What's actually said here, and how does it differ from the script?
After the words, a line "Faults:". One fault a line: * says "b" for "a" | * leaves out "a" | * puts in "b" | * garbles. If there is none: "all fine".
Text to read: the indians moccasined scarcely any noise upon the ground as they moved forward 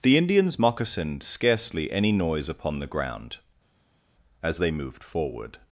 the indians moccasined scarcely any noise upon the ground as they moved forward
Faults:
all fine